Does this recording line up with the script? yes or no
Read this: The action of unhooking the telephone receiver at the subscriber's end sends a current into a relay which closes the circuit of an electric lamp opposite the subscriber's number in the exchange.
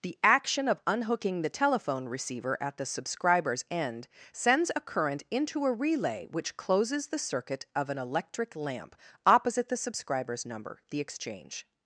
no